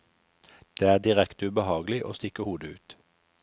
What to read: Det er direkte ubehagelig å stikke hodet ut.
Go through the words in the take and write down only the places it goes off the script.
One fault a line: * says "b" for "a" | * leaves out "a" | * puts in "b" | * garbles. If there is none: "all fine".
all fine